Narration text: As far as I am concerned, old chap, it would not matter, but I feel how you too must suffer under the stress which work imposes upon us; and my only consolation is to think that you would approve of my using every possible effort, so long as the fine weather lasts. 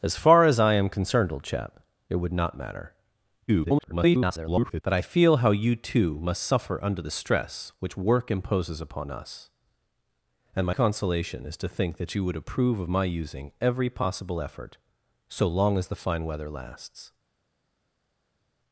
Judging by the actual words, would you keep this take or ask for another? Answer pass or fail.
fail